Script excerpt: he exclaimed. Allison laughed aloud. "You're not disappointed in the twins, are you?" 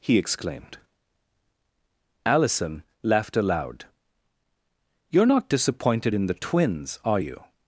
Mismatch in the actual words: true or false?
false